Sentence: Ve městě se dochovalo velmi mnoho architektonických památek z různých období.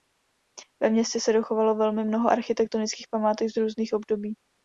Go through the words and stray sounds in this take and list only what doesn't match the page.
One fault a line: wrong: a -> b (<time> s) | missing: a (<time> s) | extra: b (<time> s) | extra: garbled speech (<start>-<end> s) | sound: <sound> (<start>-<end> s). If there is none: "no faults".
no faults